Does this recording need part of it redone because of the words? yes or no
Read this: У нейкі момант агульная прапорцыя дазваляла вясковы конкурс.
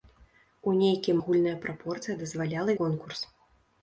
yes